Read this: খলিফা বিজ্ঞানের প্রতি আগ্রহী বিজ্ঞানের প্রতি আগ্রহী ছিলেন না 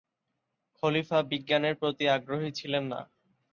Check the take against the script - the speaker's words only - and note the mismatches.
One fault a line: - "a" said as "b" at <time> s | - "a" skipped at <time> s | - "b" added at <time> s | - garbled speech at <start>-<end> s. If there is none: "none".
- "বিজ্ঞানের প্রতি আগ্রহী" skipped at 2.5 s